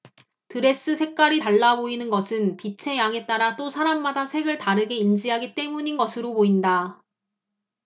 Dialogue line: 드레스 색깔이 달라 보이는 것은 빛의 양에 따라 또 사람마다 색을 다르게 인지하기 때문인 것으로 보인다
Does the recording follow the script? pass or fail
pass